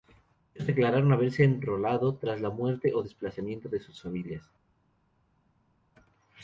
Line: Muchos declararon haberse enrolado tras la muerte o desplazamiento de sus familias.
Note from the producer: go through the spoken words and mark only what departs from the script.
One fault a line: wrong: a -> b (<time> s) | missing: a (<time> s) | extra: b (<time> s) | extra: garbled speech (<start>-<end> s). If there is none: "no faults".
no faults